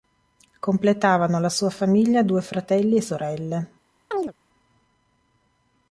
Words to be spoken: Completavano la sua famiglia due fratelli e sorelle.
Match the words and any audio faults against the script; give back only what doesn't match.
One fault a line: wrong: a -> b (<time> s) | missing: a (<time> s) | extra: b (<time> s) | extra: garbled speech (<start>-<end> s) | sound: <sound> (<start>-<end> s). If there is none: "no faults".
sound: chirp (4.1-4.3 s)